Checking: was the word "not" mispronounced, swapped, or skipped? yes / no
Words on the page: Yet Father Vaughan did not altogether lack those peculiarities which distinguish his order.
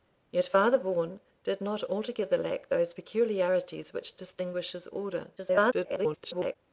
no